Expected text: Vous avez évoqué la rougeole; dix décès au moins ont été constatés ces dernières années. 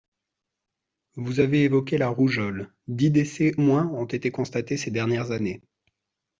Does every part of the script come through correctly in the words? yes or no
no